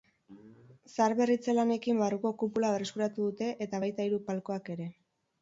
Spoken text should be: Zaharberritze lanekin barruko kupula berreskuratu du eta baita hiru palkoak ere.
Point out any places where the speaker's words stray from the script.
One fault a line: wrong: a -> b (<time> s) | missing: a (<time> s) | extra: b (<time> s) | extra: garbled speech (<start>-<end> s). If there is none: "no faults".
wrong: du -> dute (3.3 s)